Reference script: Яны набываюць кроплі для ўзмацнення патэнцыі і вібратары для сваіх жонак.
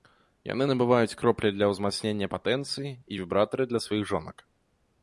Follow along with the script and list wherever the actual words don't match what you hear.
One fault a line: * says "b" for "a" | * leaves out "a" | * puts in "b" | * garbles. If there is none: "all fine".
all fine